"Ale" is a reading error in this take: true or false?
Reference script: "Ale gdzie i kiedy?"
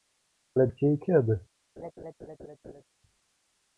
false